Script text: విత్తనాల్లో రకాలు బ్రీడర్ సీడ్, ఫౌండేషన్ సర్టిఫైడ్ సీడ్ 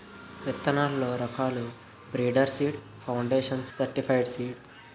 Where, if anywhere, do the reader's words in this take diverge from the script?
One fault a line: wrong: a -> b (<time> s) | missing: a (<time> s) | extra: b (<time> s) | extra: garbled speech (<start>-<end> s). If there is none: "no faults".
no faults